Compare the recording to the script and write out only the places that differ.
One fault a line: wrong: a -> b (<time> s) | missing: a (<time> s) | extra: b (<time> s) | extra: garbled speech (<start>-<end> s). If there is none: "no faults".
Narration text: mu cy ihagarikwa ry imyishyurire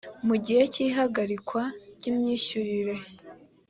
extra: gihe (0.5 s)